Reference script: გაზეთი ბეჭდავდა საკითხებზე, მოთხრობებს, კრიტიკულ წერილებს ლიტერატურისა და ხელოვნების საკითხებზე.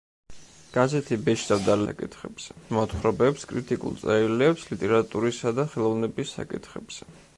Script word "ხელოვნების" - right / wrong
right